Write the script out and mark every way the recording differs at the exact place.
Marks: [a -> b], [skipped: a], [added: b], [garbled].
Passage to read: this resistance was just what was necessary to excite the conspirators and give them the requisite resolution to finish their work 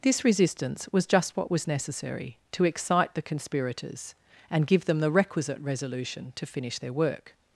this resistance was just what was necessary to excite the conspirators and give them the requisite resolution to finish their work